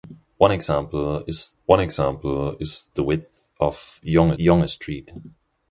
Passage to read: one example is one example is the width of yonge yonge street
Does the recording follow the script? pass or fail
pass